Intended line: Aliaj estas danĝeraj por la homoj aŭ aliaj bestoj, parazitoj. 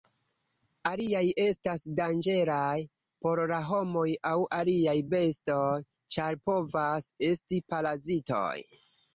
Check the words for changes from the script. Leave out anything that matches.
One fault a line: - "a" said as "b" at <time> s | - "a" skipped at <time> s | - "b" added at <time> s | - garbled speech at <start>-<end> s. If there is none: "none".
- "ĉar povas esti" added at 6.2 s